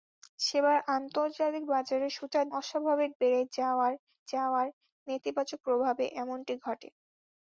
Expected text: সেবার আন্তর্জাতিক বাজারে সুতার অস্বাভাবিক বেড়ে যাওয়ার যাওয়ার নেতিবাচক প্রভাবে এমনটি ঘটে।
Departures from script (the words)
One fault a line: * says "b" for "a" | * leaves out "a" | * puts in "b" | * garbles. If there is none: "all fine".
all fine